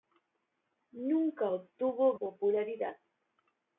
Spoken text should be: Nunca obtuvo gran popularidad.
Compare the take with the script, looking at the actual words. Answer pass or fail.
fail